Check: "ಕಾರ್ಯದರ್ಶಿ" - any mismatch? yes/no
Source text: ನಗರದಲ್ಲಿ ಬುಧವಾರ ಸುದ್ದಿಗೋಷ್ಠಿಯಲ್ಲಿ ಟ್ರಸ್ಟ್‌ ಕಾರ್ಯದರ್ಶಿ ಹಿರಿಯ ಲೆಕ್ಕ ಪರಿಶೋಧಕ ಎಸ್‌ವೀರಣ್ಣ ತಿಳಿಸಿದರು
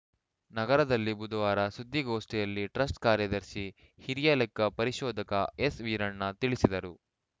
no